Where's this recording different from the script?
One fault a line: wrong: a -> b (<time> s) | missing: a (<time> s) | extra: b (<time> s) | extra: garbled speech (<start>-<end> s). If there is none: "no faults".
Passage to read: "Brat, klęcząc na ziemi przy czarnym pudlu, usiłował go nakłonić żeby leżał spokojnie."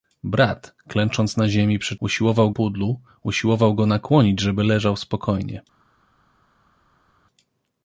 wrong: czarnym -> usiłował (2.0 s)